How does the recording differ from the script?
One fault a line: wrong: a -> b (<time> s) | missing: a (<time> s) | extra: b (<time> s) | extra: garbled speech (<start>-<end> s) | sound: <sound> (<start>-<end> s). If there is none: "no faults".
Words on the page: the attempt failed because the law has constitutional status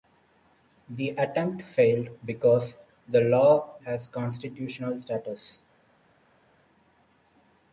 no faults